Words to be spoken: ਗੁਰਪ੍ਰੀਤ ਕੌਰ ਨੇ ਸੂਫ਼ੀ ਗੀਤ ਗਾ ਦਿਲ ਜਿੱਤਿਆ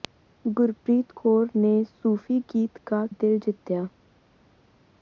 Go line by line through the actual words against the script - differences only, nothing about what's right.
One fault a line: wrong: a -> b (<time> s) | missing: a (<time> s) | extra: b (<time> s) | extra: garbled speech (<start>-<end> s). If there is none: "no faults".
no faults